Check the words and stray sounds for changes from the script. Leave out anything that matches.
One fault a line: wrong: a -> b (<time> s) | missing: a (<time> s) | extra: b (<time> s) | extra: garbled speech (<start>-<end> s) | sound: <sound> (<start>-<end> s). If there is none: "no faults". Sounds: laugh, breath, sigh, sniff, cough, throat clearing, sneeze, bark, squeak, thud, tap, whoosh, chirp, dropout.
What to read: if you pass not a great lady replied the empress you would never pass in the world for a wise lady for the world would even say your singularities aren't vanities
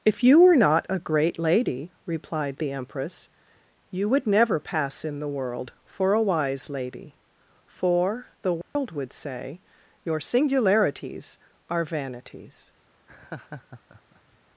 wrong: pass -> were (0.4 s)
sound: dropout (8.6-8.8 s)
missing: even (9.1 s)
wrong: aren't -> are (11.7 s)
sound: laugh (13.1-14.4 s)